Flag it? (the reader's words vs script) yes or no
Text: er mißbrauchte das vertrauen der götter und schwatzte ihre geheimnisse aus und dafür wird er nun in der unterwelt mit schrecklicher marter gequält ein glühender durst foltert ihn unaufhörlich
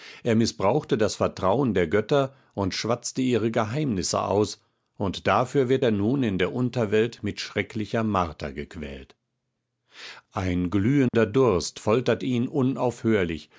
no